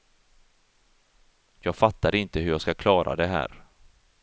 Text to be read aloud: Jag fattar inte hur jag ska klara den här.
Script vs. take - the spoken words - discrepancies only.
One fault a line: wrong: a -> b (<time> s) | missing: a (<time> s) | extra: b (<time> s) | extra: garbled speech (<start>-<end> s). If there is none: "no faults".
wrong: den -> det (3.2 s)